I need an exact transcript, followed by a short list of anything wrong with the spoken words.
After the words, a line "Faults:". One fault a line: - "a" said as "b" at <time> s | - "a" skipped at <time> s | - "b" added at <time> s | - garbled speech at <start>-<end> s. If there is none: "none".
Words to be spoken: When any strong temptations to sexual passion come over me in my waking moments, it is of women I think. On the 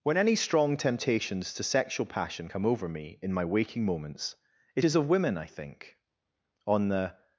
When any strong temptations to sexual passion come over me in my waking moments, it is of women I think. On the
Faults:
none